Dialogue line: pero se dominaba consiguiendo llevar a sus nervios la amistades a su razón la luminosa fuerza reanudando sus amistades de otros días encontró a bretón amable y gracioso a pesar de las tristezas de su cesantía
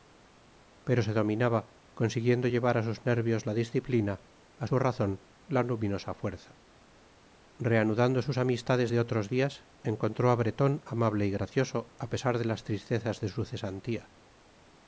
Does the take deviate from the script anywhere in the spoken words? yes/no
yes